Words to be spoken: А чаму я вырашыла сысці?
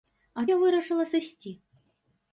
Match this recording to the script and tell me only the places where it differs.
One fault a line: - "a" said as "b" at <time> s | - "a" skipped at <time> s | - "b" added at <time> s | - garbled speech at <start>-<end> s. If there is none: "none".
- "чаму" skipped at 0.5 s